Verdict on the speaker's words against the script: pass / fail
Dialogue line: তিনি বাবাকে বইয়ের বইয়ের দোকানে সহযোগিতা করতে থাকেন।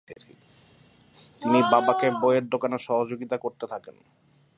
fail